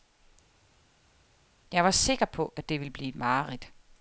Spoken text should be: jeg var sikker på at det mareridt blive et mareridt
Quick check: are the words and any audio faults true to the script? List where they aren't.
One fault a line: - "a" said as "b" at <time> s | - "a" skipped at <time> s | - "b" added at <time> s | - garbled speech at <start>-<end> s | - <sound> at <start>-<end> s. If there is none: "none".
- "mareridt" said as "ville" at 2.8 s